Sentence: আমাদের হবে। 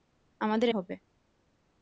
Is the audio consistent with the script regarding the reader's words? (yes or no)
yes